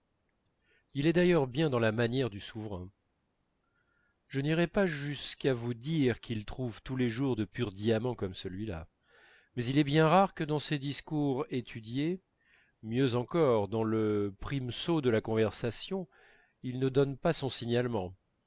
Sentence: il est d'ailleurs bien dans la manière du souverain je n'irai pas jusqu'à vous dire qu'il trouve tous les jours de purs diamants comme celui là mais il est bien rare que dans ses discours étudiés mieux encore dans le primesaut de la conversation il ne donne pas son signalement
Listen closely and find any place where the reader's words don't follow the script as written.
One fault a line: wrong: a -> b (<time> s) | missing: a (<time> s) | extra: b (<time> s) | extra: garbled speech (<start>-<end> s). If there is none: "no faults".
no faults